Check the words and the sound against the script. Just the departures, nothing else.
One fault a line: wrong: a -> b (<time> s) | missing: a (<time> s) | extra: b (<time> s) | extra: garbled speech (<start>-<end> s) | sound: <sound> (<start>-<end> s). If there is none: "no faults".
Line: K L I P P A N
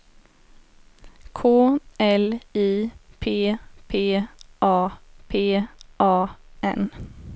extra: P A (5.3 s)